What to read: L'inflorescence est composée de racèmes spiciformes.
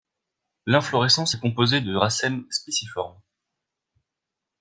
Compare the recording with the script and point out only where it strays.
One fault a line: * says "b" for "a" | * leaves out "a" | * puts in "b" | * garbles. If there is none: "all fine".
all fine